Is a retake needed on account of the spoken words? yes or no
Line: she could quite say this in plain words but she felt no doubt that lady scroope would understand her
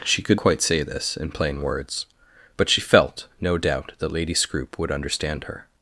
no